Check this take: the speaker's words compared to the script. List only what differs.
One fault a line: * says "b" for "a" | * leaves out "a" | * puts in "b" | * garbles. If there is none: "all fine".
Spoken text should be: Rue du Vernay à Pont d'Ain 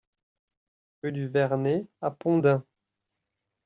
all fine